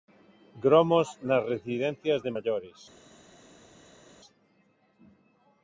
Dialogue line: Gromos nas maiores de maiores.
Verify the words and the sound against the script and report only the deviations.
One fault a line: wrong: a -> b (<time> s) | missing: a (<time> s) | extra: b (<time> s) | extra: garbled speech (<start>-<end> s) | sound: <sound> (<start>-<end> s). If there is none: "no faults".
wrong: maiores -> residencias (1.5 s)